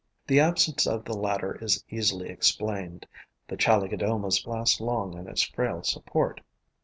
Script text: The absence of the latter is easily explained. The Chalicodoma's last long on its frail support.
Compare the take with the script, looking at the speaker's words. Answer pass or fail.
pass